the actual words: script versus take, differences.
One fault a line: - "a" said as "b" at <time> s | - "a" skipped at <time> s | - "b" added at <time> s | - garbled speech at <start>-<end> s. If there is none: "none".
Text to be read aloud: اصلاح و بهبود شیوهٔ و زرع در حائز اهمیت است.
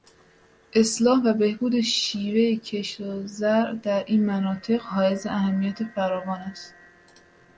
- "کشت" added at 2.5 s
- "این مناطق" added at 4.1 s
- "فراوان" added at 5.8 s